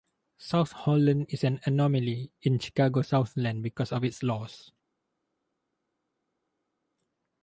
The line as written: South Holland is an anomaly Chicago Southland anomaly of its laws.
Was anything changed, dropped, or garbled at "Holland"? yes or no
no